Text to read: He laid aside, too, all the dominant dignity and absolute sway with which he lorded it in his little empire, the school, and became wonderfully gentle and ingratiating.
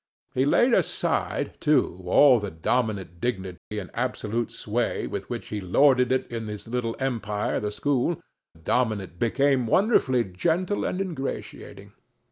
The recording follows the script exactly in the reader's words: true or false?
false